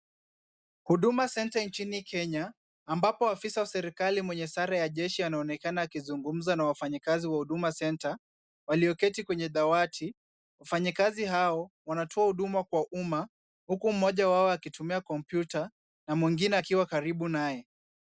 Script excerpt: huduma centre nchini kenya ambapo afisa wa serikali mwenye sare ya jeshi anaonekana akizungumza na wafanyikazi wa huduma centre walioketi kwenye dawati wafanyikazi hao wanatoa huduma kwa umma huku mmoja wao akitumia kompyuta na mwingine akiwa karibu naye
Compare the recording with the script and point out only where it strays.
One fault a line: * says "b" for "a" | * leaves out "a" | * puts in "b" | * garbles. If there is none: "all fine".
all fine